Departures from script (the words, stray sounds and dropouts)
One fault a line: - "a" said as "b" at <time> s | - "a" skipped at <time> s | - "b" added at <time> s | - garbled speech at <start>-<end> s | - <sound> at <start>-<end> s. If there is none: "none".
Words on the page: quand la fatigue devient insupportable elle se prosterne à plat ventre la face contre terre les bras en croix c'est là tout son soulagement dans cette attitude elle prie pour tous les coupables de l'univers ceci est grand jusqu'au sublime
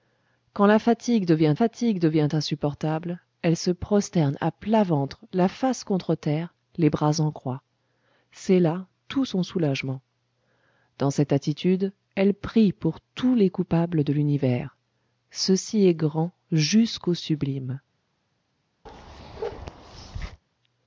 - "fatigue devient" added at 1.5 s
- bark at 18.9-20.4 s